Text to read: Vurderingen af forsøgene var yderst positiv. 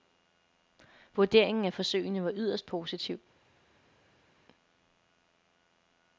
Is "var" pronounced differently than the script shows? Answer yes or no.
no